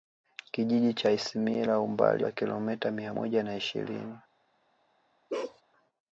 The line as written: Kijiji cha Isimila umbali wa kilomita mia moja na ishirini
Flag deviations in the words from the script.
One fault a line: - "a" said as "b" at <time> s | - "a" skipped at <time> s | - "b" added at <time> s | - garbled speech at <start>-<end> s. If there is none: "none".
none